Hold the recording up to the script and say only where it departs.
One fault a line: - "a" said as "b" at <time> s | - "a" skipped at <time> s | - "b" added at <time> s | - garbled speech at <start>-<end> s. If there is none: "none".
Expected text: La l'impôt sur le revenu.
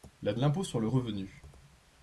none